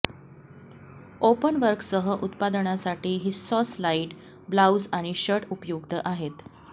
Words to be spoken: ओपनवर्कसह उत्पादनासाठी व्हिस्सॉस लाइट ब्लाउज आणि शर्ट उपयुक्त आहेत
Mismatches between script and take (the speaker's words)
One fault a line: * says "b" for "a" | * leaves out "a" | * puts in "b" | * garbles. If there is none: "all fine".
all fine